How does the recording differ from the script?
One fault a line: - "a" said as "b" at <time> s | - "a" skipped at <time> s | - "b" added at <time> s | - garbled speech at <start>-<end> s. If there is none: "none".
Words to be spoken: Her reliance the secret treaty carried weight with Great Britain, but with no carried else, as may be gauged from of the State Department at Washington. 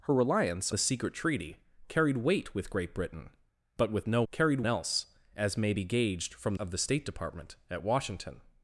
none